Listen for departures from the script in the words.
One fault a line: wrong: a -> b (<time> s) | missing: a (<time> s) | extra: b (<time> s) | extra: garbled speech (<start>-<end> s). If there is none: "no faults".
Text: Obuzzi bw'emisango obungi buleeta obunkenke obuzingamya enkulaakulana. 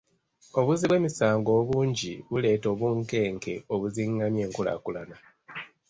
no faults